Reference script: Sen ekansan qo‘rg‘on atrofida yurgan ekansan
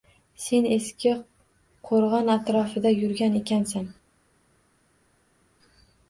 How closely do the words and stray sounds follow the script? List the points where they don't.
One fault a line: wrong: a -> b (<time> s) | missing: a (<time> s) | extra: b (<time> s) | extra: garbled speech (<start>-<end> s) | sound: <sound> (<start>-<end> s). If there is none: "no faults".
wrong: ekansan -> eski (0.8 s)